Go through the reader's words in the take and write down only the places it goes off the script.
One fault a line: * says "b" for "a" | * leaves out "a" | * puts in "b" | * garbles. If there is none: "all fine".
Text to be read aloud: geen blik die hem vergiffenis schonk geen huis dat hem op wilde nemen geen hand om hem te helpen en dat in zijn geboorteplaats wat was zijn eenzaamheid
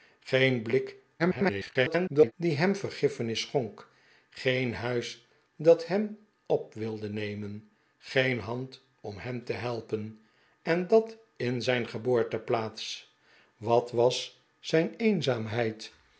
* garbles